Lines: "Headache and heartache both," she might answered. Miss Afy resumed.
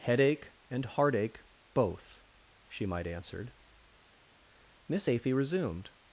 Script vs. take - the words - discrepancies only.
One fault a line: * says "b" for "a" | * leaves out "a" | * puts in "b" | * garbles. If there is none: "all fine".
all fine